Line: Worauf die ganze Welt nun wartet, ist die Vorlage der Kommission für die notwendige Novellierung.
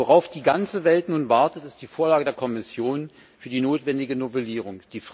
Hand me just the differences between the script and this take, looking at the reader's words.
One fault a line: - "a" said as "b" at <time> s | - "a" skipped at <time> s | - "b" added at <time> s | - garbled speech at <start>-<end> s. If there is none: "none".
none